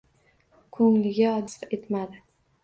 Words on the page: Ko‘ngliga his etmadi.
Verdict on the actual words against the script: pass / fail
pass